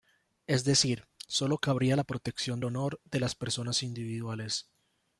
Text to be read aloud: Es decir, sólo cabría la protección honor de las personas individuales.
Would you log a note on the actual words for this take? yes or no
no